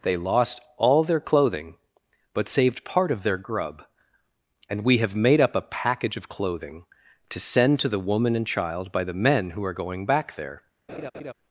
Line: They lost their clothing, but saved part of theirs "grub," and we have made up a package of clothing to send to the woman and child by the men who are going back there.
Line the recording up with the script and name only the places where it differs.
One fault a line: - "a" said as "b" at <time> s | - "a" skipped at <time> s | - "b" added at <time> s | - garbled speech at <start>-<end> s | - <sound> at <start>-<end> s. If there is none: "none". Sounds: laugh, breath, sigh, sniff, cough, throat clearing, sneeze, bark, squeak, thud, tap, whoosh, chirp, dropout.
- "all" added at 0.8 s
- "theirs" said as "their" at 3.2 s
- laugh at 10.9-11.3 s